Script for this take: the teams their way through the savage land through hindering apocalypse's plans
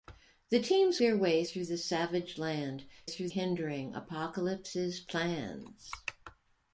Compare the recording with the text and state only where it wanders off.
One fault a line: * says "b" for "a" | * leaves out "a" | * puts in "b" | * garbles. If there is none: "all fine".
all fine